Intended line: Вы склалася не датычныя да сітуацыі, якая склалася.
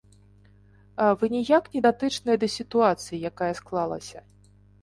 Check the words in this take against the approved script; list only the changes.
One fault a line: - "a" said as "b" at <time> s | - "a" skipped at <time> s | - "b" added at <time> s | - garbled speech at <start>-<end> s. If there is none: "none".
- "склалася" said as "ніяк" at 1.4 s